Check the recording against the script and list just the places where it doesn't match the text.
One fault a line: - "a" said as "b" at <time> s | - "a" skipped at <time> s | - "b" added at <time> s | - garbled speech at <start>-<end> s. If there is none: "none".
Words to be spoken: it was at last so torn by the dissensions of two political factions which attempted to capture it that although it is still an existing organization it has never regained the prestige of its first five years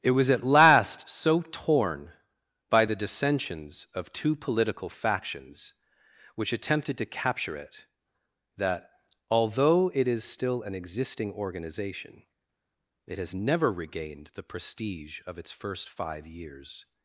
none